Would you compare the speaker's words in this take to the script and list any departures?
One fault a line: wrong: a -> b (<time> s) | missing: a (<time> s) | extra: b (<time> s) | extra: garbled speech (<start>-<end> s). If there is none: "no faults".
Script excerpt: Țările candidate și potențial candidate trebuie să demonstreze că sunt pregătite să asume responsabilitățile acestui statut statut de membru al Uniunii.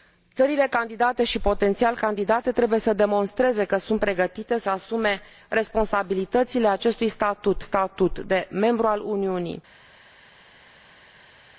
no faults